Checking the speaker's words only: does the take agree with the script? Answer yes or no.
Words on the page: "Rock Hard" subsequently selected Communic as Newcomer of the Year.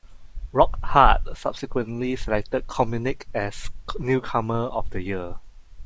yes